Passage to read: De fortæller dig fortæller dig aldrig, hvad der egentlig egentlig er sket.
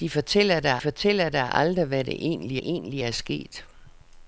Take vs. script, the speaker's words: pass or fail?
pass